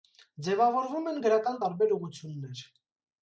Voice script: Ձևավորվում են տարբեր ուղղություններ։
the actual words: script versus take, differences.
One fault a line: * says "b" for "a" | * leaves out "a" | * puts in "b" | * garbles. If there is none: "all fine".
* puts in "գրական"